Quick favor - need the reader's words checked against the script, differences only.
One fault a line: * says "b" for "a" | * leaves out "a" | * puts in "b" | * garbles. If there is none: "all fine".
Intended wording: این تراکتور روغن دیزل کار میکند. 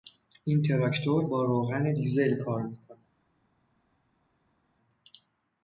* puts in "با"